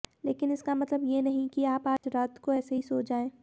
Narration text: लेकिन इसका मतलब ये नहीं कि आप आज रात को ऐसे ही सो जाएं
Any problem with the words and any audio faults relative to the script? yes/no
yes